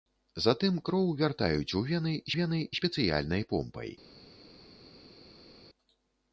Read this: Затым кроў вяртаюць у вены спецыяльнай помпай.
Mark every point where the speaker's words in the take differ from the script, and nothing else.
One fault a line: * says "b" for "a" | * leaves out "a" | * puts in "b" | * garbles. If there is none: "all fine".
* puts in "вены"